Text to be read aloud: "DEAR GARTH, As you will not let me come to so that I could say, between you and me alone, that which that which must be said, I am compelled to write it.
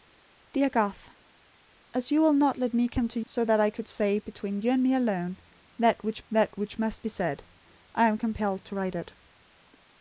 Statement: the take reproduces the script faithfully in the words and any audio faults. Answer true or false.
true